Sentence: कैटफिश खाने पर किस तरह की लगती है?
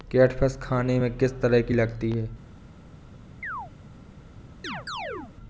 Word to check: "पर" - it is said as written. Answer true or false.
false